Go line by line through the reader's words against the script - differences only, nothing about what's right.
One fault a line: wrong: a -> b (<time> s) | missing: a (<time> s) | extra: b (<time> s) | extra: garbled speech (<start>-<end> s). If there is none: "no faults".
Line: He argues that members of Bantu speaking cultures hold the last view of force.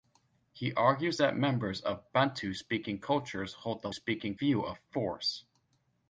wrong: last -> speaking (3.9 s)